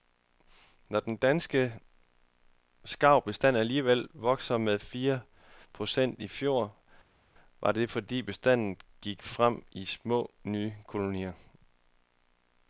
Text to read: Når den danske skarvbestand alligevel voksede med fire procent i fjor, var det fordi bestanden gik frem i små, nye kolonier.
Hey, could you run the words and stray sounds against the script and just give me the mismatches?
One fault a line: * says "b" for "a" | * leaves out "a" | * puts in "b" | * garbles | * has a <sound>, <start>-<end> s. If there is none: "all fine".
all fine